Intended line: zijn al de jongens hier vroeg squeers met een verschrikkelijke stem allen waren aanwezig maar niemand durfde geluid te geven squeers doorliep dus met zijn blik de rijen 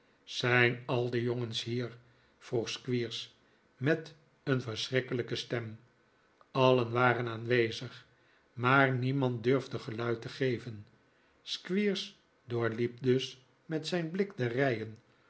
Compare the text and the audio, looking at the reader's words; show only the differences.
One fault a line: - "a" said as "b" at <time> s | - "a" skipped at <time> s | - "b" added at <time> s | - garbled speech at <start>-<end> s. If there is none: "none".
none